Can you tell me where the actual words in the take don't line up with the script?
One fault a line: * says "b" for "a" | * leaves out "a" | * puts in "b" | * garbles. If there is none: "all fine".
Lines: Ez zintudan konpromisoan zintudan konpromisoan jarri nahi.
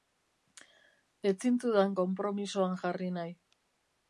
* leaves out "zintudan konpromisoan"